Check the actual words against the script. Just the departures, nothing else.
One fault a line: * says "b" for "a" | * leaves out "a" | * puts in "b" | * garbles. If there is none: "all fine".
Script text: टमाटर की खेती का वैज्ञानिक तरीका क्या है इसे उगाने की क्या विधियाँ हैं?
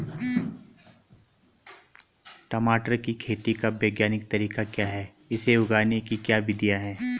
all fine